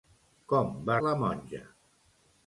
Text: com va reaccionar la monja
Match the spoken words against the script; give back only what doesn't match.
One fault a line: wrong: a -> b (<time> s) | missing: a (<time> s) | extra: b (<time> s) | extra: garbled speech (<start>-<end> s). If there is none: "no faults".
missing: reaccionar (0.9 s)